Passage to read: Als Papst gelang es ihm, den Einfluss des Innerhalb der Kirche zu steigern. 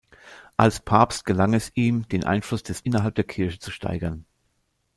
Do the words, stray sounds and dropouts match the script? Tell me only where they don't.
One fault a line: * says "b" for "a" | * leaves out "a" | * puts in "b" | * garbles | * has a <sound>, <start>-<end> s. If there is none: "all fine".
all fine